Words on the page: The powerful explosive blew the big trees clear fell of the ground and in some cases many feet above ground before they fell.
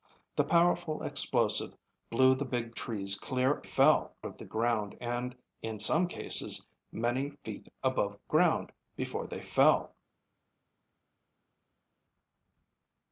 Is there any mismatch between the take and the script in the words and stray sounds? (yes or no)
no